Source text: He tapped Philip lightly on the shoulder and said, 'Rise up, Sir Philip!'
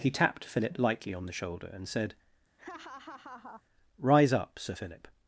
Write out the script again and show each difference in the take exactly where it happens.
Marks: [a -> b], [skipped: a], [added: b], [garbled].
He tapped Philip lightly on the shoulder and said, 'Rise up, Sir Philip!'